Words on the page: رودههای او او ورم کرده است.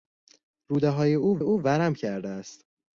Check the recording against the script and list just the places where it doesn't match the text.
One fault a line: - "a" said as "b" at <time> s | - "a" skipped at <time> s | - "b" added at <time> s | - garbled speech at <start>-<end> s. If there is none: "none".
none